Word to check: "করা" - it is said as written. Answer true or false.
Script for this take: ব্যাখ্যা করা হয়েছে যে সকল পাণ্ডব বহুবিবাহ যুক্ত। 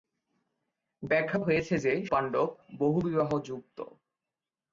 false